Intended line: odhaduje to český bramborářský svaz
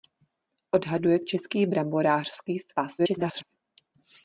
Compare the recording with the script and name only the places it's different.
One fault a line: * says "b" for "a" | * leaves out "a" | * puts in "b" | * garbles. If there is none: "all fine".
* leaves out "to"
* garbles